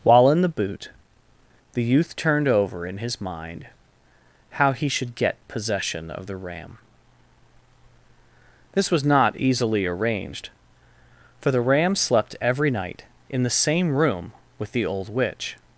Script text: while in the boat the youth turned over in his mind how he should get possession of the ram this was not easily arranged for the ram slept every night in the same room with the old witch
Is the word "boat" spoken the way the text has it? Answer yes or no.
no